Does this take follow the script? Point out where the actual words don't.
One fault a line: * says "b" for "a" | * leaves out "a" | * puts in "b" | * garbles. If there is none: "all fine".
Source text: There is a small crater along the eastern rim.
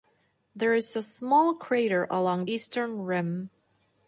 * leaves out "the"